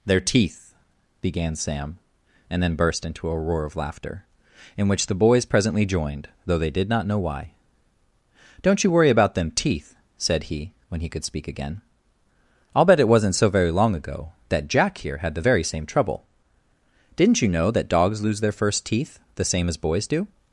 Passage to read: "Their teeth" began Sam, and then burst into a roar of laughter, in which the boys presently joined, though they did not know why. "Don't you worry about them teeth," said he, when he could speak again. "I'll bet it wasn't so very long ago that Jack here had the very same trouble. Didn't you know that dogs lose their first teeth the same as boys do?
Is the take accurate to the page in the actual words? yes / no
yes